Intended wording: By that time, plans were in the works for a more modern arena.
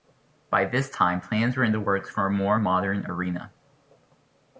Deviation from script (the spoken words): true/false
true